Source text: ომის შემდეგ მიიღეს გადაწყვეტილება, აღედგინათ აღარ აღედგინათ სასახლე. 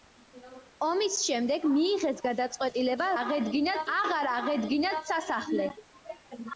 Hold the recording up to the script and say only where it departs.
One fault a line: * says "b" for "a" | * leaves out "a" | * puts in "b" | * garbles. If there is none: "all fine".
all fine